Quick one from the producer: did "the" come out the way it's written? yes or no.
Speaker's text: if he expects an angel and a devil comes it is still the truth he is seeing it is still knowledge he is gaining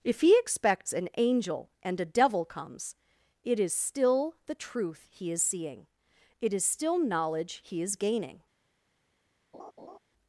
yes